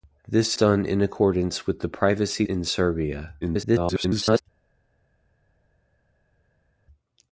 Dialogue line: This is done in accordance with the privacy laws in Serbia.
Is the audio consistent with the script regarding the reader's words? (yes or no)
no